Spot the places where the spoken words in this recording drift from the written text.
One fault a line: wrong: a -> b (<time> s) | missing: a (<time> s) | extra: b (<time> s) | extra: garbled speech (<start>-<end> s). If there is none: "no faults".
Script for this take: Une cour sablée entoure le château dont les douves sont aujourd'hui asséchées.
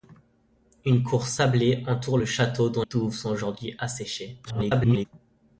missing: les (2.8 s)
extra: garbled speech (4.5-5.1 s)